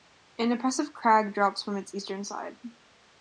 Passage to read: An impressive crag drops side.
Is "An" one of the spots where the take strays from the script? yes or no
no